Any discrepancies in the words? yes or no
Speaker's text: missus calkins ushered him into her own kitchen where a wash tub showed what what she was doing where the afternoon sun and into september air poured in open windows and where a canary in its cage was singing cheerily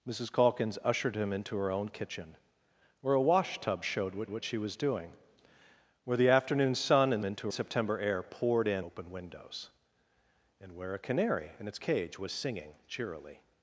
no